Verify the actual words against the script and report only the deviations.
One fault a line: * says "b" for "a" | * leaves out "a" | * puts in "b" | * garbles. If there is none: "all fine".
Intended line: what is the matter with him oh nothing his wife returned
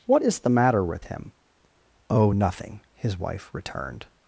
all fine